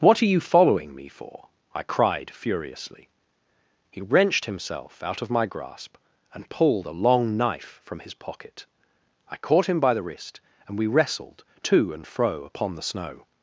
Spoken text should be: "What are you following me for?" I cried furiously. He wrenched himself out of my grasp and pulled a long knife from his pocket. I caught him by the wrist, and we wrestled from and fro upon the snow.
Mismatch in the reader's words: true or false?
true